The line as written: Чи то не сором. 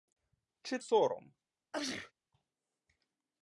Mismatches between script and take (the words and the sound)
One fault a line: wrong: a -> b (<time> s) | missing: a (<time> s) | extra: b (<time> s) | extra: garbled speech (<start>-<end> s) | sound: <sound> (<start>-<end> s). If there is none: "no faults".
missing: то не (0.8 s)
sound: sneeze (1.7-2.1 s)